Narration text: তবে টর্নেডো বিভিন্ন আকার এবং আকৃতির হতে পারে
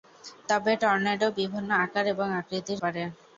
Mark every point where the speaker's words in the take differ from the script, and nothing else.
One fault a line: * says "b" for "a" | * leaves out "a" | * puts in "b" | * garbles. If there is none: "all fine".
* leaves out "হতে"